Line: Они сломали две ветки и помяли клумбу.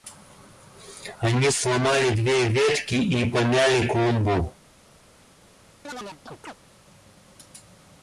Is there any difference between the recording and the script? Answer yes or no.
no